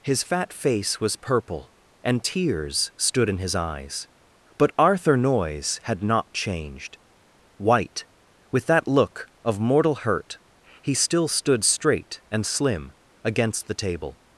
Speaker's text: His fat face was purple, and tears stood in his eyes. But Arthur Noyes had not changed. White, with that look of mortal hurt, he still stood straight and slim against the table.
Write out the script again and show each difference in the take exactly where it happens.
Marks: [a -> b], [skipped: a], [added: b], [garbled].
His fat face was purple, and tears stood in his eyes. But Arthur Noyes had not changed. White, with that look of mortal hurt, he still stood straight and slim against the table.